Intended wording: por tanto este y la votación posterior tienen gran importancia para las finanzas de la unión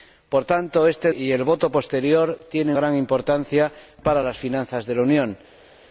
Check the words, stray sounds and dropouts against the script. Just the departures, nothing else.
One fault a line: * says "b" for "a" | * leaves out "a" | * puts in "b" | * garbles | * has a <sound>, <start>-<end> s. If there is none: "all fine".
all fine